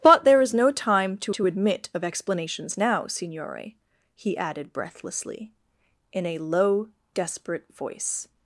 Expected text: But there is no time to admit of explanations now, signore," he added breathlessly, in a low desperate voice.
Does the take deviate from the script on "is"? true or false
false